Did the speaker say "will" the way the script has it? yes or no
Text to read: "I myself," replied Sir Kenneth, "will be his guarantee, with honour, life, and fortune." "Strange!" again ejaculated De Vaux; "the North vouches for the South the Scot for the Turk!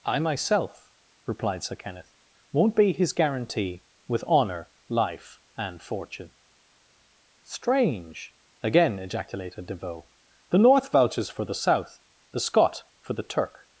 no